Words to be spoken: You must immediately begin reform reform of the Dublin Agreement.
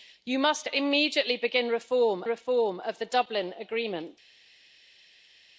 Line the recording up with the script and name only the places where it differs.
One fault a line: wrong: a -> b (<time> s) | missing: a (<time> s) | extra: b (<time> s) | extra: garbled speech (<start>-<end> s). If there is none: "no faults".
no faults